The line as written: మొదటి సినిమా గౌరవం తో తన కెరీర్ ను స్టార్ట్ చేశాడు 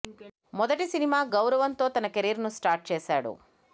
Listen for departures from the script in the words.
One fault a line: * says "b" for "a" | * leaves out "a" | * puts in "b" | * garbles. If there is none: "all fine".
all fine